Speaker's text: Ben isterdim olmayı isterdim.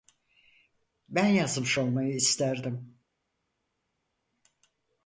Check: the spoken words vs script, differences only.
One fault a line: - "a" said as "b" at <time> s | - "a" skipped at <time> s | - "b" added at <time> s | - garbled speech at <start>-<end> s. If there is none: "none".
- "isterdim" said as "yazmış" at 1.2 s